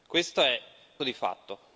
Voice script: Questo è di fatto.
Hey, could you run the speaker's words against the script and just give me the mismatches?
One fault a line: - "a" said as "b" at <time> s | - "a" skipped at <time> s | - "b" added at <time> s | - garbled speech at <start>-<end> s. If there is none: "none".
none